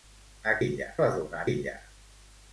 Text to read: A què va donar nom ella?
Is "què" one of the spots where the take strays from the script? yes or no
yes